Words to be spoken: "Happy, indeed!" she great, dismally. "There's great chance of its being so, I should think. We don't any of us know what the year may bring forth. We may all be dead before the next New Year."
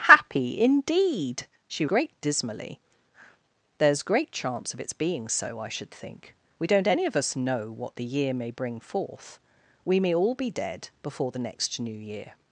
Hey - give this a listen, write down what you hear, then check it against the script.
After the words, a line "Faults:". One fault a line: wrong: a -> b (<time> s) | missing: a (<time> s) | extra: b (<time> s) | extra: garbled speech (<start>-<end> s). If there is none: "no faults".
"Happy, indeed!" she great, dismally. "There's great chance of its being so, I should think. We don't any of us know what the year may bring forth. We may all be dead before the next New Year."
Faults:
no faults